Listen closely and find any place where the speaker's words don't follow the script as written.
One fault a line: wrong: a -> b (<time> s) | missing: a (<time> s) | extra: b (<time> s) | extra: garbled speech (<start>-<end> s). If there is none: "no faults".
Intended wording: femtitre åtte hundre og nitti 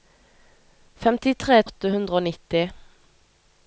no faults